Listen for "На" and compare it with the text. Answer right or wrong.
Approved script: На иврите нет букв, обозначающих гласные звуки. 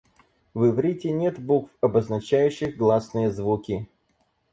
wrong